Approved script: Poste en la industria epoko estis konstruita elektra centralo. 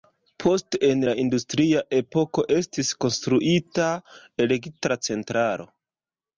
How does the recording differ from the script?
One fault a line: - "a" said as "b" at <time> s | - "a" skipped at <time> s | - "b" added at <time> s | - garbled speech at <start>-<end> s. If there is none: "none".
none